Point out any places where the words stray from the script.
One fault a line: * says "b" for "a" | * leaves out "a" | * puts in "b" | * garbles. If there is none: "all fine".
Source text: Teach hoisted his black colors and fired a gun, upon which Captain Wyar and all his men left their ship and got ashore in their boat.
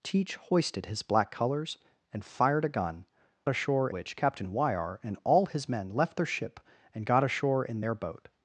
* says "ashore" for "upon"